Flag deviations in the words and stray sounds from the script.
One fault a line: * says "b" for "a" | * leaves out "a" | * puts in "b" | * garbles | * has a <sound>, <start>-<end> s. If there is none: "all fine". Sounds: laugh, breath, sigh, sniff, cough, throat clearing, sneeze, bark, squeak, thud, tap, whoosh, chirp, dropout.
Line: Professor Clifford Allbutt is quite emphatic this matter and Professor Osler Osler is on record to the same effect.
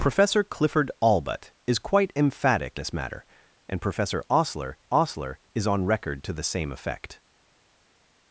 all fine